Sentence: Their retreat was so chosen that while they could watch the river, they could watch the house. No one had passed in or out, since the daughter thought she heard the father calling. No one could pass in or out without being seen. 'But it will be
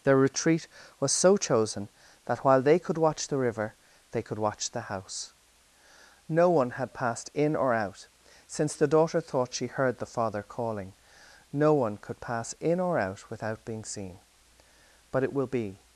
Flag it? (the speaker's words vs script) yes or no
no